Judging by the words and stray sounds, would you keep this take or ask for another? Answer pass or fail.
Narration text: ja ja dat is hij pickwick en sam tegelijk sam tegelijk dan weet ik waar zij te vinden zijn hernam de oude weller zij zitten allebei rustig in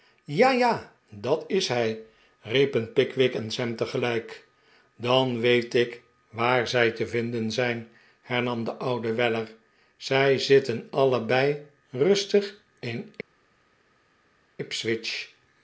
fail